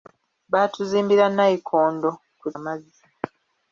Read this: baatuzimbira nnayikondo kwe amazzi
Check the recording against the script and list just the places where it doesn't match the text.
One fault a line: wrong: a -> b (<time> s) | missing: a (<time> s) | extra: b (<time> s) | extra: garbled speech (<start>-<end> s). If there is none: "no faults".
no faults